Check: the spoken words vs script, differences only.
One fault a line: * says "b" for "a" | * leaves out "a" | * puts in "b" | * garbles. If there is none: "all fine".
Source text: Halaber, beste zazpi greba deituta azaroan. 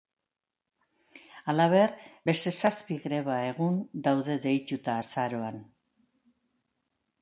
* puts in "egun daude"